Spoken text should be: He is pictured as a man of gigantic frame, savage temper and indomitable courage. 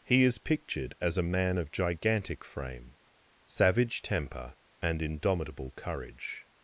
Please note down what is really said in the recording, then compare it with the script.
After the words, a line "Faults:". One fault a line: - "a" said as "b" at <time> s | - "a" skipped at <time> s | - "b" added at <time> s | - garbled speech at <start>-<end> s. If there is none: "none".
He is pictured as a man of gigantic frame, savage temper and indomitable courage.
Faults:
none